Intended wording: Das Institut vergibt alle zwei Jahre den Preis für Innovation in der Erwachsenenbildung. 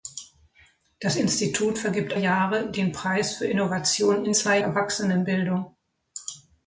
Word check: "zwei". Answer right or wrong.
wrong